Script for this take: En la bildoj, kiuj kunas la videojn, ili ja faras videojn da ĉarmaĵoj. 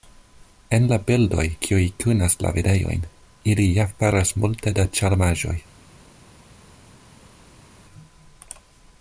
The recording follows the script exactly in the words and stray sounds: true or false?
false